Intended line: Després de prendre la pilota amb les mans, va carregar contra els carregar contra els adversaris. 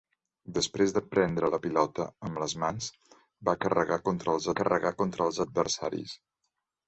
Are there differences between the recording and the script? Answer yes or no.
no